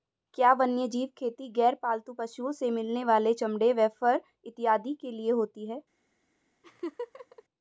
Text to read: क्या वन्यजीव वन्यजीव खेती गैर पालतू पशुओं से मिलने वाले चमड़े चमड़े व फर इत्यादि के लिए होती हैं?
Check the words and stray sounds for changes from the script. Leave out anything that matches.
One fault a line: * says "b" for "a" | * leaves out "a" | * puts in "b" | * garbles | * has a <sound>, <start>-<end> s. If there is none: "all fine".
* leaves out "वन्यजीव"
* leaves out "चमड़े"
* has a laugh, 6.6-7.4 s